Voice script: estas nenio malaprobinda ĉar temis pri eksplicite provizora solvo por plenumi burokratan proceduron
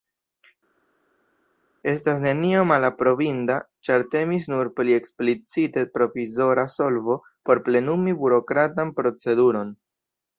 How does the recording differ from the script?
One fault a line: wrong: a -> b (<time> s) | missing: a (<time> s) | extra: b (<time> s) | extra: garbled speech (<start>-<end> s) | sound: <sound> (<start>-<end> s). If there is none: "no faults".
extra: nur (4.5 s)